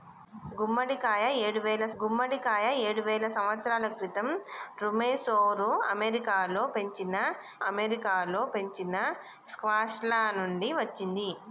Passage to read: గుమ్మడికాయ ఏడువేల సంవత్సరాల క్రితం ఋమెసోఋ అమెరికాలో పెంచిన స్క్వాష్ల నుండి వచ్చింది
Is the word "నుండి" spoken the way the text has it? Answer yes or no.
yes